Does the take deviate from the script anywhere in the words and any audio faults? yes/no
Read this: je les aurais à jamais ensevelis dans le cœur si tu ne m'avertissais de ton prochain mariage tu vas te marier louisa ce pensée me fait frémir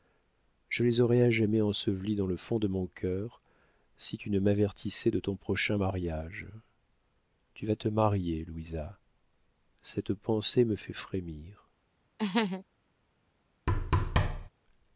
yes